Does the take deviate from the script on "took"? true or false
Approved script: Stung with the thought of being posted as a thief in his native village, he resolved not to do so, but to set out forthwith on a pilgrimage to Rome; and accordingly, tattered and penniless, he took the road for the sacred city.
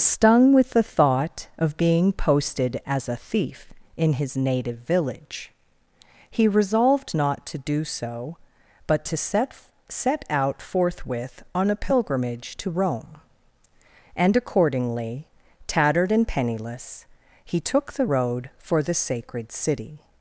false